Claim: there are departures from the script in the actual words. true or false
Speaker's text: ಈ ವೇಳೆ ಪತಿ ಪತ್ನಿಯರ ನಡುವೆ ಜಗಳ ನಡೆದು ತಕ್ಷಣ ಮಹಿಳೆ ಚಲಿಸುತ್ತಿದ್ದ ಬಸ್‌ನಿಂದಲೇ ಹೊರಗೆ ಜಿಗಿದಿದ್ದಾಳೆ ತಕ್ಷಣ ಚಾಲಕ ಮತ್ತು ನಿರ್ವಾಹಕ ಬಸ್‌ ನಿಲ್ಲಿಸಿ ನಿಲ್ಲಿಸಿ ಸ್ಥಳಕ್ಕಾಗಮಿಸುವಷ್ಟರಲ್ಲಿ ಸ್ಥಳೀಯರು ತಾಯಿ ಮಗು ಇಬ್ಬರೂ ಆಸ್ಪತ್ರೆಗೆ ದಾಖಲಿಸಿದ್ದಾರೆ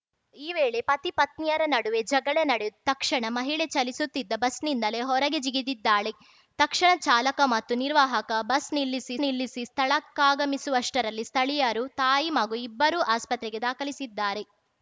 false